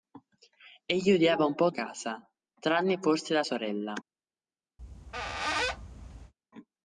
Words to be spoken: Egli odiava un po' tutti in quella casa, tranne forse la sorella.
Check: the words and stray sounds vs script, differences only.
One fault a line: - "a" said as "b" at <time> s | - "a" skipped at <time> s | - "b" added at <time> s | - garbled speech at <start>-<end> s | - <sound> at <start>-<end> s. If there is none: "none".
- "tutti in quella" skipped at 1.7 s
- squeak at 4.8-6.3 s